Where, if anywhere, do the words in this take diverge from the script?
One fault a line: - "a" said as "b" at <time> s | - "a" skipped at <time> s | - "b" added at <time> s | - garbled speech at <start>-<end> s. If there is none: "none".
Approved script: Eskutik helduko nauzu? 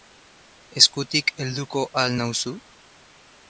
- "al" added at 2.0 s